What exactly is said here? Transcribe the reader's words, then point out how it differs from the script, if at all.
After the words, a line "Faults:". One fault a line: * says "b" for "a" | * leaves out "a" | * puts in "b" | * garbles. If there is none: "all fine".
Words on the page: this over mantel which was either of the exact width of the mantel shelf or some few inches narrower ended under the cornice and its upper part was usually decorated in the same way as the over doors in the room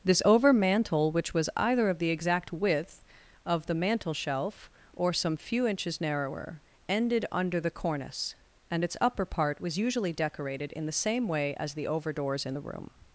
this over mantel which was either of the exact width of the mantel shelf or some few inches narrower ended under the cornice and its upper part was usually decorated in the same way as the over doors in the room
Faults:
all fine